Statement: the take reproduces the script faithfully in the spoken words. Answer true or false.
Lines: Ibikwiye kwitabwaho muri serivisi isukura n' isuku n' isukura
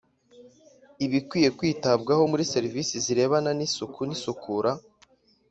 false